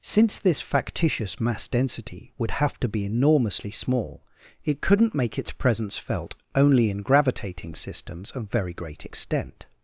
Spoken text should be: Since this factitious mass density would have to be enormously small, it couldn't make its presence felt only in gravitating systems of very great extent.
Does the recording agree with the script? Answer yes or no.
yes